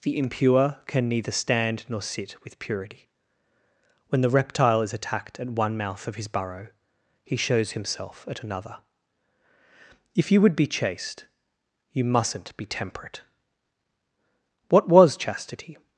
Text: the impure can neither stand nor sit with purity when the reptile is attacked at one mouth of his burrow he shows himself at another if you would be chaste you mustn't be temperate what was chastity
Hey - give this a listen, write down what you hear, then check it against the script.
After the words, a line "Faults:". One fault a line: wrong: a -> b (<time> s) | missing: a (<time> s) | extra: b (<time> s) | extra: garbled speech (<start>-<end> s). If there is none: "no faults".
the impure can neither stand nor sit with purity when the reptile is attacked at one mouth of his burrow he shows himself at another if you would be chaste you mustn't be temperate what was chastity
Faults:
no faults